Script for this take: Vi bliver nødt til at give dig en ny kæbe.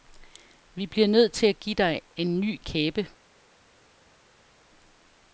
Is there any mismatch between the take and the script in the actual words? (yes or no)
no